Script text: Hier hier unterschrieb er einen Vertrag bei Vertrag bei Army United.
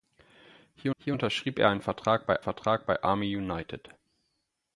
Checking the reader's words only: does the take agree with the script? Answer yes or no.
yes